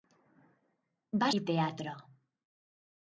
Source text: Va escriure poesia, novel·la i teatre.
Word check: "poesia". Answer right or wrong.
wrong